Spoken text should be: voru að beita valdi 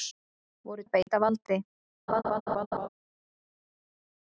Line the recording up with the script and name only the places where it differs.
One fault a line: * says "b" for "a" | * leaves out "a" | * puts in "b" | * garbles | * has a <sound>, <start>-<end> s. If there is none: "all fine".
* has a dropout, 1.0-1.1 s
* has a laugh, 2.1-2.9 s